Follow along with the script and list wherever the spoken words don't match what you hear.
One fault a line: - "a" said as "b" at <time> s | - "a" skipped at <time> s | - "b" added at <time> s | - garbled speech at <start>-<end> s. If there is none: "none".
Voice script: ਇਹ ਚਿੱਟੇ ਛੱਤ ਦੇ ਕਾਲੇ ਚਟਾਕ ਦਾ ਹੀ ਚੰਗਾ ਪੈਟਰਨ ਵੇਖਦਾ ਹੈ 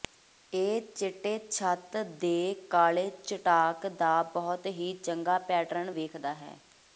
- "ਬਹੁਤ" added at 4.3 s